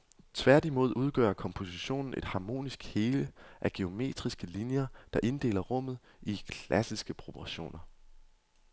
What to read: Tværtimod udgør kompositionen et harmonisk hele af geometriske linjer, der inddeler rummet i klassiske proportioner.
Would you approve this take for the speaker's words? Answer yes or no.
yes